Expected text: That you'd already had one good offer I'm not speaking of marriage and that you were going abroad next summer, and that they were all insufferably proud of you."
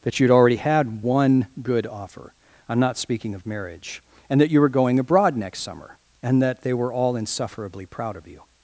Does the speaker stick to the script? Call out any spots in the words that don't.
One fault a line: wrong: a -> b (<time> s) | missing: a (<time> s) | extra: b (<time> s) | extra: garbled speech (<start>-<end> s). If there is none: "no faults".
no faults